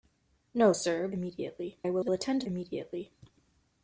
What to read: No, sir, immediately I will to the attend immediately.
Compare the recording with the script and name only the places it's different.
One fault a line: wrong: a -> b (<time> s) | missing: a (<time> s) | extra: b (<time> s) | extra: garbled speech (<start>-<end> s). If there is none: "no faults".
no faults